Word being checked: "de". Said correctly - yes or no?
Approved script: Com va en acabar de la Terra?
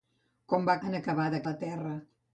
yes